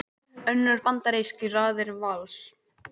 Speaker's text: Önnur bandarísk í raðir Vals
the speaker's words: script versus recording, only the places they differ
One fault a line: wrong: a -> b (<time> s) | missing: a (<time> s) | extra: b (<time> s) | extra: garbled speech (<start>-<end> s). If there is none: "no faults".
no faults